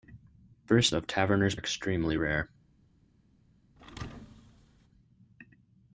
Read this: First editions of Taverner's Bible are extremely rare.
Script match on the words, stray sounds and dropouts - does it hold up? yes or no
no